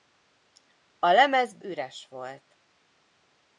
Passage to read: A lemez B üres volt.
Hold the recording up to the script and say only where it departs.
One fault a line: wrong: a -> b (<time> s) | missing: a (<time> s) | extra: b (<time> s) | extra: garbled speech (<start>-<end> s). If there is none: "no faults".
no faults